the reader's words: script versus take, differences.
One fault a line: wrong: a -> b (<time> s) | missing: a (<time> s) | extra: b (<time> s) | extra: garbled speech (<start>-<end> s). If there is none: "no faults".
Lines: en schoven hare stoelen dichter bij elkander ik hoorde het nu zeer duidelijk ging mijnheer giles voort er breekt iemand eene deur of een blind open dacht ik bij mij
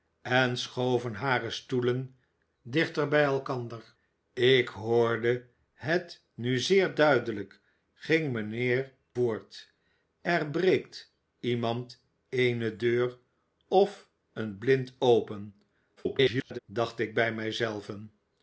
missing: giles (8.9 s)
extra: garbled speech (16.0-16.6 s)